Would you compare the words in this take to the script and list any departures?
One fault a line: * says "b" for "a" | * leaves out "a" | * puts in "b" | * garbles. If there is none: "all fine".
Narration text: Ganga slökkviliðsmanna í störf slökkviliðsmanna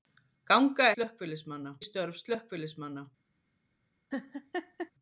all fine